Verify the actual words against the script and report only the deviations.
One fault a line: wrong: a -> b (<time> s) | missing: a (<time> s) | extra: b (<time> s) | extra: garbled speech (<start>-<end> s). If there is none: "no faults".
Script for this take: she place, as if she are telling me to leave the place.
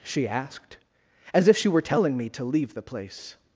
wrong: place -> asked (0.3 s)
wrong: are -> were (1.7 s)